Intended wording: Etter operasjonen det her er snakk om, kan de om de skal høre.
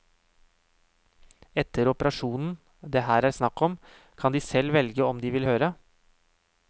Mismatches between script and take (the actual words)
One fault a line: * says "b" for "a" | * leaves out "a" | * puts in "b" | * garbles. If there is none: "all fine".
* puts in "selv velge"
* says "vil" for "skal"